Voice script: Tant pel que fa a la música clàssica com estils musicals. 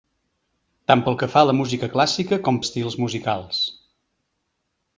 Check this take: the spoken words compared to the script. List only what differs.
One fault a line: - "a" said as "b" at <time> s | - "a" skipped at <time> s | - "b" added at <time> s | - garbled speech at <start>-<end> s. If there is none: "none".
none